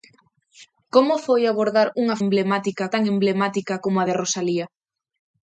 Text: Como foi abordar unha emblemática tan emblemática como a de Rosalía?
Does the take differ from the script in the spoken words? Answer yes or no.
no